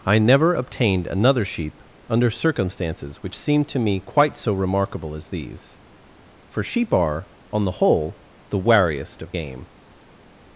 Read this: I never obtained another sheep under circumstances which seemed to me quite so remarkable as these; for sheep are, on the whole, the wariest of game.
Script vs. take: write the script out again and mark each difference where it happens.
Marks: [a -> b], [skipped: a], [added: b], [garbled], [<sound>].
I never obtained another sheep under circumstances which seemed to me quite so remarkable as these; for sheep are, on the whole, the wariest of game.